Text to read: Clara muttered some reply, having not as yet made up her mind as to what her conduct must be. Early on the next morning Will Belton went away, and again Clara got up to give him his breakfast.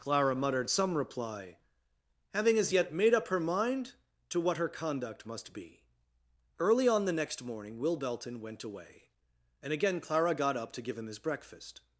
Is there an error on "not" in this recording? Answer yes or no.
yes